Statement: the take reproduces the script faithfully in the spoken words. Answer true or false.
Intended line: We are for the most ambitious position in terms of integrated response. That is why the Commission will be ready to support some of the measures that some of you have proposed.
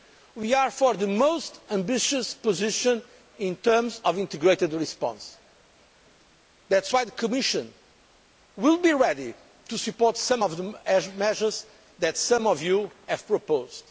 true